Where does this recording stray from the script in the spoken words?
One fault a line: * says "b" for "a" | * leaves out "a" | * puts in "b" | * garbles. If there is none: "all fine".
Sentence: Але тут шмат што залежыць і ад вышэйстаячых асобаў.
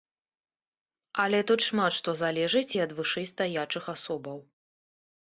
all fine